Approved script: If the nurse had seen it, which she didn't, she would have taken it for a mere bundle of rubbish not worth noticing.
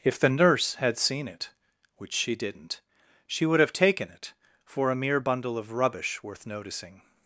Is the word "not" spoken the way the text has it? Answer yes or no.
no